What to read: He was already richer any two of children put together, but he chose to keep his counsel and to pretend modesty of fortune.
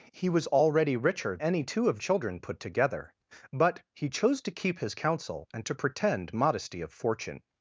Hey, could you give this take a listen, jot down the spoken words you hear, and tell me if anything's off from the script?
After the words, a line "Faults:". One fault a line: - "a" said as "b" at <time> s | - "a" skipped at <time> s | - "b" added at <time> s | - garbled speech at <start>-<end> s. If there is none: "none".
He was already richer any two of children put together, but he chose to keep his counsel and to pretend modesty of fortune.
Faults:
none